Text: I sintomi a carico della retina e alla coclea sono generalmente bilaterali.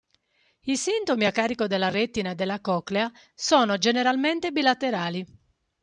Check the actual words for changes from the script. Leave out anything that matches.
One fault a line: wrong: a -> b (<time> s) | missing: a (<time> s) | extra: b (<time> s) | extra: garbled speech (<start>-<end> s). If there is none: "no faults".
wrong: alla -> della (2.4 s)